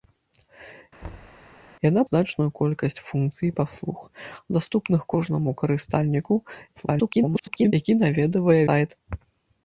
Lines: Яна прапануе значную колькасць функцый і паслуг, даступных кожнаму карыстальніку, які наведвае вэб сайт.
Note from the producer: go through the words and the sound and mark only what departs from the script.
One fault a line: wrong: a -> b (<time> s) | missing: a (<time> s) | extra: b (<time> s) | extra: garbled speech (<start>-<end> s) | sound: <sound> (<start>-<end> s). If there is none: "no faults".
sound: thud (1.0-1.4 s)
missing: прапануе (2.0 s)
extra: garbled speech (6.8-7.7 s)
missing: вэб (8.6 s)